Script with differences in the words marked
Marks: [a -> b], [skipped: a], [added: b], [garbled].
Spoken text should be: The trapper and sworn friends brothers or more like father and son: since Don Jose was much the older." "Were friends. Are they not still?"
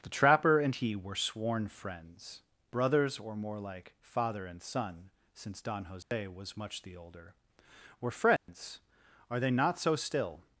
The trapper and [added: he were] sworn friends brothers or more like father and son: since Don Jose was much the older." "Were friends. Are they not [added: so] still?"